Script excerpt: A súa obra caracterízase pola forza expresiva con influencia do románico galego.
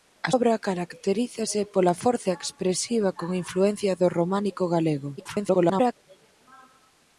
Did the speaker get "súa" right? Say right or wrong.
wrong